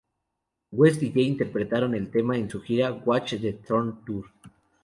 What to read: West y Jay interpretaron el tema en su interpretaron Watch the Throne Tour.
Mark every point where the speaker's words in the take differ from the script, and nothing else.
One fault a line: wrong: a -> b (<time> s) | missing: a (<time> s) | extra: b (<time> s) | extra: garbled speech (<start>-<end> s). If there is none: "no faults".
wrong: interpretaron -> gira (2.6 s)